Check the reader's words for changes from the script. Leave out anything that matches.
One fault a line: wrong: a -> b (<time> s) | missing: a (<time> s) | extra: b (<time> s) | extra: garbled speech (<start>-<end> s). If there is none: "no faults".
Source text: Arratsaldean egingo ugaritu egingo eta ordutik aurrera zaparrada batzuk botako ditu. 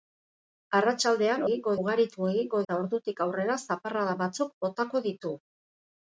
no faults